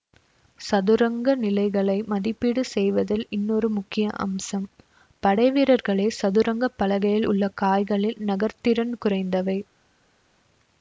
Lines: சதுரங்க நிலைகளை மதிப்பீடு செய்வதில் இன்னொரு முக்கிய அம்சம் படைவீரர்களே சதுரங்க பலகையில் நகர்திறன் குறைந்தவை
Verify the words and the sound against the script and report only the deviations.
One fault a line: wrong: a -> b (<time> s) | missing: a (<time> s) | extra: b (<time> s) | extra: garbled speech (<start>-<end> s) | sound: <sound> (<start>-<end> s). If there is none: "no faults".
extra: உள்ள காய்களில் (7.3 s)